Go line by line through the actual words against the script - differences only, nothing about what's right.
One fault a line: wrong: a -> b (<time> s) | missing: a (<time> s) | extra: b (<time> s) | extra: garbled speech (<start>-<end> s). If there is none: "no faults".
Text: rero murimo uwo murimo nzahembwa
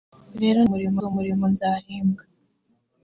no faults